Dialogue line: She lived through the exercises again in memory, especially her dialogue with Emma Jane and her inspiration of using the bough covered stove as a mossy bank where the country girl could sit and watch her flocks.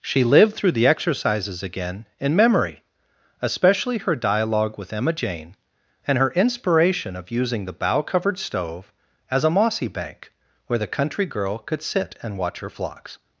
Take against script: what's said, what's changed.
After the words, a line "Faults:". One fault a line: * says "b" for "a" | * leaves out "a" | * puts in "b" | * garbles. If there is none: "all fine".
She lived through the exercises again in memory, especially her dialogue with Emma Jane and her inspiration of using the bough covered stove as a mossy bank where the country girl could sit and watch her flocks.
Faults:
all fine